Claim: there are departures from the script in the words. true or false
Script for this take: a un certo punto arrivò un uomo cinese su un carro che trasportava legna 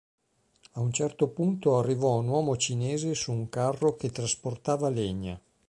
false